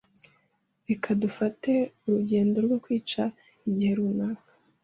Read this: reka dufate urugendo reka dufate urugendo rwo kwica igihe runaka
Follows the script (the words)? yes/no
no